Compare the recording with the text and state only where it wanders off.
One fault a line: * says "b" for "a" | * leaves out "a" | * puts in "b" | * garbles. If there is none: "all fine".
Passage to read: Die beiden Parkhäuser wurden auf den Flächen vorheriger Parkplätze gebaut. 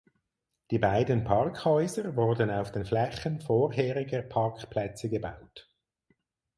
all fine